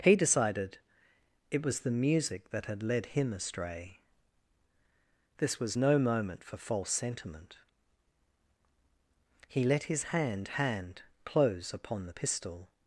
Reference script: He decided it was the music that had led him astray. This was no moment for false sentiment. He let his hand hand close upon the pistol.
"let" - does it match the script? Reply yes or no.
yes